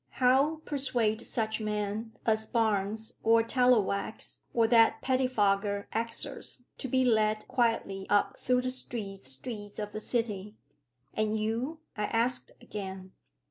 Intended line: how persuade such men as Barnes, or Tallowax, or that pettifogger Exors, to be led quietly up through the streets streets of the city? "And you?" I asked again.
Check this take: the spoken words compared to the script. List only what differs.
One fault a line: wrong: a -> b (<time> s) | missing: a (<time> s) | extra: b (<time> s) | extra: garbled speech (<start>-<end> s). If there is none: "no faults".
no faults